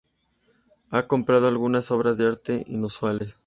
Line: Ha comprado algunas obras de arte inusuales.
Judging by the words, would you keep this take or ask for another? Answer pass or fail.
pass